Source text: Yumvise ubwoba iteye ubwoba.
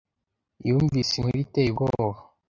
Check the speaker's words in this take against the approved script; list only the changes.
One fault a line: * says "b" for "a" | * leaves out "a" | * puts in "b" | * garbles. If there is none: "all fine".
* says "inkuru" for "ubwoba"